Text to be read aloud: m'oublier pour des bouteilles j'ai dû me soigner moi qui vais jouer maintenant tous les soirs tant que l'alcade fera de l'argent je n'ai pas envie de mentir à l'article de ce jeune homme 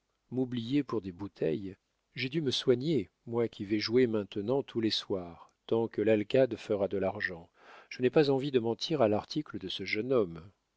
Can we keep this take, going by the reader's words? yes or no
yes